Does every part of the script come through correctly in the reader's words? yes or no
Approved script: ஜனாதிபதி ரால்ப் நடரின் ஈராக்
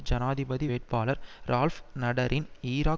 no